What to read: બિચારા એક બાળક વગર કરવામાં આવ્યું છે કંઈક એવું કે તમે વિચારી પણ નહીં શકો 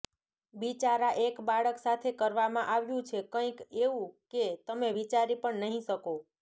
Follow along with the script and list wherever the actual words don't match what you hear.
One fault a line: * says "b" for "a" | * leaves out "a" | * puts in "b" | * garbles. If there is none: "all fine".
* says "સાથે" for "વગર"